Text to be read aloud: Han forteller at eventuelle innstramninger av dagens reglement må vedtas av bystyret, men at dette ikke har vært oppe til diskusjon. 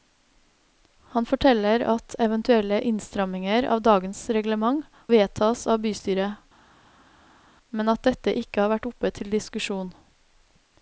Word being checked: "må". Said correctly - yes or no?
no